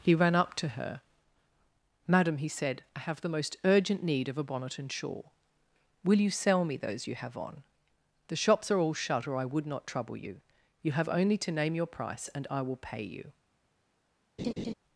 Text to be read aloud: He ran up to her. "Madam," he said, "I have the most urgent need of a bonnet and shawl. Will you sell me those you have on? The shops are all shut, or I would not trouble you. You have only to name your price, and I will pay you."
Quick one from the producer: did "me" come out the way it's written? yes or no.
yes